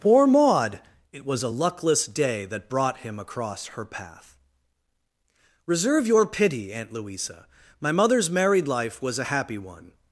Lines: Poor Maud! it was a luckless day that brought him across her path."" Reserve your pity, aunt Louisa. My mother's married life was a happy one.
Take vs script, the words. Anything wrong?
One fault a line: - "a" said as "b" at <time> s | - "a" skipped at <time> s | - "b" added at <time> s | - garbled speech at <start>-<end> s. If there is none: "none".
none